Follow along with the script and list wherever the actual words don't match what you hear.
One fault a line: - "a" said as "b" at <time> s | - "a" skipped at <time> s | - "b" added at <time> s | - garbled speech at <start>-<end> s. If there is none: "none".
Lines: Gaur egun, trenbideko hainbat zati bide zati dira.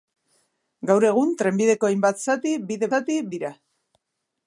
none